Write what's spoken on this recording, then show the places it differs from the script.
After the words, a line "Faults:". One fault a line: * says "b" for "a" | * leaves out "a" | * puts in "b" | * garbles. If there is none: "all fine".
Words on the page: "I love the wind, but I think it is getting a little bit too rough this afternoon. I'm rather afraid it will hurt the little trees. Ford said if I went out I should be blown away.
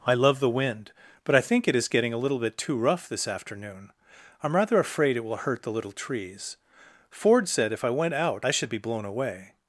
"I love the wind, but I think it is getting a little bit too rough this afternoon. I'm rather afraid it will hurt the little trees. Ford said if I went out I should be blown away.
Faults:
all fine